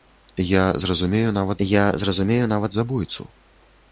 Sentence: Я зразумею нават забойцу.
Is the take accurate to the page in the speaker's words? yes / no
no